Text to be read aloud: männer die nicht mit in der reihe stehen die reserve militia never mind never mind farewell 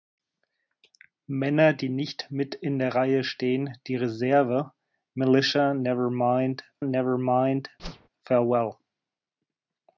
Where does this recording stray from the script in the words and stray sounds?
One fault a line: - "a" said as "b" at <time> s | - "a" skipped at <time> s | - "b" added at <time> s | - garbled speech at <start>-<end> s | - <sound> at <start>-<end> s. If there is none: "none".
- whoosh at 7.8-8.1 s